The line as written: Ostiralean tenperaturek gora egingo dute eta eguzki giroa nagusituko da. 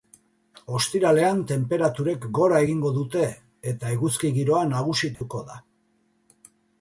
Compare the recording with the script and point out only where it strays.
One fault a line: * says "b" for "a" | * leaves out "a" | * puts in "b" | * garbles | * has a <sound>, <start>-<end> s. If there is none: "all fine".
* has a dropout, 5.1-5.2 s